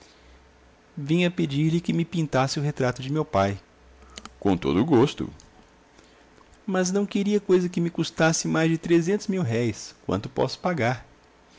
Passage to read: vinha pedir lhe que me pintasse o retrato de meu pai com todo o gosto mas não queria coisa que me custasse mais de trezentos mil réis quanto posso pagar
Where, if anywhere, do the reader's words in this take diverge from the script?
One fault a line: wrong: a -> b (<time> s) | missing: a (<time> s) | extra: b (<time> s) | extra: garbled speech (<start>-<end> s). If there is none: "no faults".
no faults